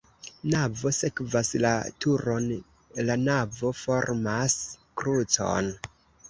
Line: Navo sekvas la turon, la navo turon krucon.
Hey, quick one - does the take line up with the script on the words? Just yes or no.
no